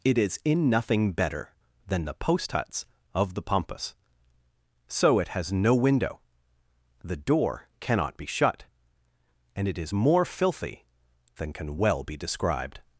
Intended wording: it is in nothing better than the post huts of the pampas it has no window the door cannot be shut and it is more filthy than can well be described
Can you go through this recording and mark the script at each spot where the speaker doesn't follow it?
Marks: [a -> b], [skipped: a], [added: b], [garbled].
it is in nothing better than the post huts of the pampas [added: so] it has no window the door cannot be shut and it is more filthy than can well be described